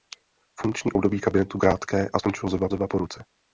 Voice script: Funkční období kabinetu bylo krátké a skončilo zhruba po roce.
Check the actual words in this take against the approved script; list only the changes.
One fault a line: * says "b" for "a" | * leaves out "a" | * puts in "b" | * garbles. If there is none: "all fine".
* leaves out "bylo"
* puts in "zhruba"